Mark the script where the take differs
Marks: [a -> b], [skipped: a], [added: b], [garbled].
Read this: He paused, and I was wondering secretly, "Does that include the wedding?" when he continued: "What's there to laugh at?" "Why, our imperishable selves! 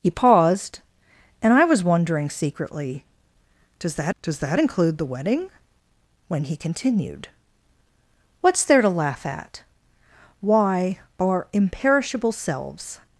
He paused, and I was wondering secretly, "Does that [added: does that] include the wedding?" when he continued: "What's there to laugh at?" "Why, our imperishable selves!